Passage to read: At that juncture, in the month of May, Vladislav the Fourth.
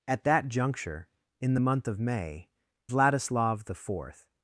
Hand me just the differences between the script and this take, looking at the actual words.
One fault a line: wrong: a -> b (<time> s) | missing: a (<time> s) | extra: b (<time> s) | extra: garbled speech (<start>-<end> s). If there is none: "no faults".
no faults